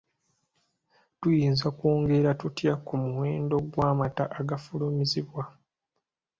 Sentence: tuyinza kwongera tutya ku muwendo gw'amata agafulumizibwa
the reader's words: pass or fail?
pass